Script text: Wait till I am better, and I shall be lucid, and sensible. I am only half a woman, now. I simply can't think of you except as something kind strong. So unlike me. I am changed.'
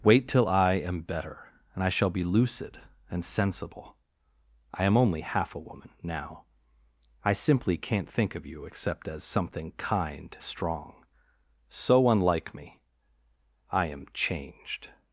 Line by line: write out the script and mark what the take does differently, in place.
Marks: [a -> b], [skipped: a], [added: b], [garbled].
Wait till I am better, and I shall be lucid, and sensible. I am only half a woman, now. I simply can't think of you except as something kind strong. So unlike me. I am changed.'